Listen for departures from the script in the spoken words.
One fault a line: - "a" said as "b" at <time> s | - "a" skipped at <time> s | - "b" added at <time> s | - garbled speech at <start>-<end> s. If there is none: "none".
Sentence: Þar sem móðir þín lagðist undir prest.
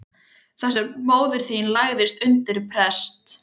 none